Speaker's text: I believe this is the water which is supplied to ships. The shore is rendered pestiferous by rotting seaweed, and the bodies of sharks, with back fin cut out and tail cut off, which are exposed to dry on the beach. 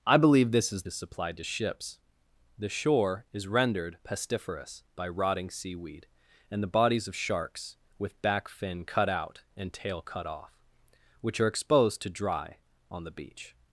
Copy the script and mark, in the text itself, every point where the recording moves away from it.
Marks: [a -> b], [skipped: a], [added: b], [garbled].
I believe this is [skipped: the water which] is supplied to ships. The shore is rendered pestiferous by rotting seaweed, and the bodies of sharks, with back fin cut out and tail cut off, which are exposed to dry on the beach.